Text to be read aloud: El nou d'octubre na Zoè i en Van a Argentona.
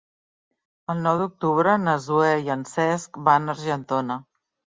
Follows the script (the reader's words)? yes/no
no